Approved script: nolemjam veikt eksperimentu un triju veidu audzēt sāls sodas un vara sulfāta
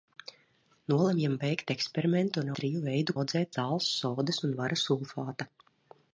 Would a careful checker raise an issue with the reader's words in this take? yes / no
no